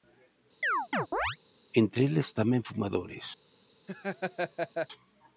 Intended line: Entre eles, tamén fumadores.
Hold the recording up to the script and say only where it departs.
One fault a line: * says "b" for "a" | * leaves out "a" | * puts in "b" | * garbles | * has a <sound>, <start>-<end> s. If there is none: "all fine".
* has a chirp, 0.6-1.4 s
* has a laugh, 3.9-4.9 s